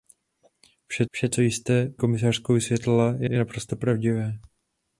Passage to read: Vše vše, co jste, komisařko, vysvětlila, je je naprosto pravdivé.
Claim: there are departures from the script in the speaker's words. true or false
false